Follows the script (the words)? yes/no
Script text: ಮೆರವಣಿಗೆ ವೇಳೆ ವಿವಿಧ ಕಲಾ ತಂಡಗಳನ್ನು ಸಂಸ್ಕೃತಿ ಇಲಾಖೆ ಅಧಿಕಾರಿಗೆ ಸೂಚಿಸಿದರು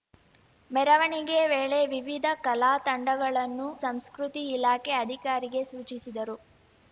yes